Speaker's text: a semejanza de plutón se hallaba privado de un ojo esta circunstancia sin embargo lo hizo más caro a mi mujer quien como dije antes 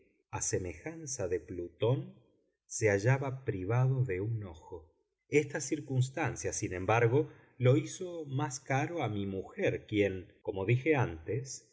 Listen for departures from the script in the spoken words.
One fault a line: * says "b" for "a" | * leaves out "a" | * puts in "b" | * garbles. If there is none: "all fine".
all fine